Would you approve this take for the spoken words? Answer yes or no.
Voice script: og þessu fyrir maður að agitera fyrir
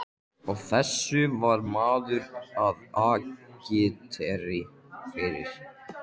no